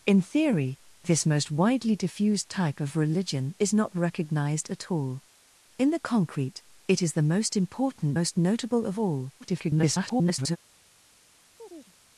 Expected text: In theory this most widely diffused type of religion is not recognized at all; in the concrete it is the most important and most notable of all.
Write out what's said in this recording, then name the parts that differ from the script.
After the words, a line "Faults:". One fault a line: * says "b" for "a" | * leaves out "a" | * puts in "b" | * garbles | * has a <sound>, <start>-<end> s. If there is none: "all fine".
In theory this most widely diffused type of religion is not recognized at all; in the concrete it is the most important most notable of all. [garbled]
Faults:
* leaves out "and"
* garbles
* has a chirp, 11.6-11.9 s